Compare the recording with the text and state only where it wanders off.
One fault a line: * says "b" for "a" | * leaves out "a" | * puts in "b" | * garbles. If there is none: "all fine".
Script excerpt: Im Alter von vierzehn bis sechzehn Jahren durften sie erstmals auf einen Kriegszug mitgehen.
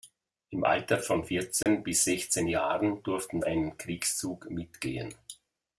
* leaves out "sie erstmals auf"